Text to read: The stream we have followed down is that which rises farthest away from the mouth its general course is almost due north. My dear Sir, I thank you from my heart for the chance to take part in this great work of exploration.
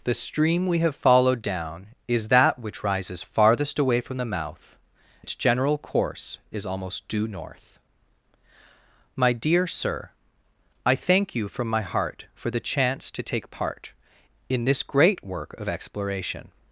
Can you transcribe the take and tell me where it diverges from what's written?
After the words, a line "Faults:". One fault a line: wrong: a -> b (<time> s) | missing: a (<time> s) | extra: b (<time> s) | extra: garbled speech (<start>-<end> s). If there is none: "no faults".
The stream we have followed down is that which rises farthest away from the mouth its general course is almost due north. My dear Sir, I thank you from my heart for the chance to take part in this great work of exploration.
Faults:
no faults